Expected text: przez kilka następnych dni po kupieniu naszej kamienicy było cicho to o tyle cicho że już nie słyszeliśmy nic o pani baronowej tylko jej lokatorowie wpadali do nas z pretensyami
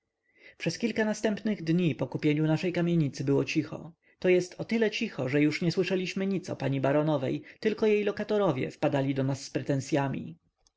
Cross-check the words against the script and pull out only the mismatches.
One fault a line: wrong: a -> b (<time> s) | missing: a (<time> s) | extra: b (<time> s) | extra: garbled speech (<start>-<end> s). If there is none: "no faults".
extra: jest (4.3 s)